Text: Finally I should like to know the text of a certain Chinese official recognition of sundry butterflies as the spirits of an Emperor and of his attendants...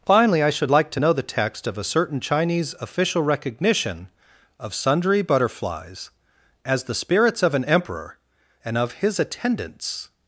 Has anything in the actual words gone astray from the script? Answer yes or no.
no